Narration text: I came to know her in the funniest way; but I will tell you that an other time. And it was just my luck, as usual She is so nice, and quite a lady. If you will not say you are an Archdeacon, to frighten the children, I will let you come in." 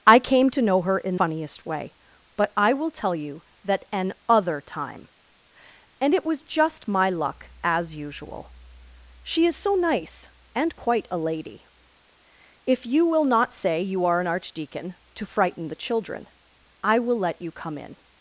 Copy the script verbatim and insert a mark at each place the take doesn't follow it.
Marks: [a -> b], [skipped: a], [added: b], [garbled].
I came to know her in [skipped: the] funniest way; but I will tell you that an other time. And it was just my luck, as usual She is so nice, and quite a lady. If you will not say you are an Archdeacon, to frighten the children, I will let you come in."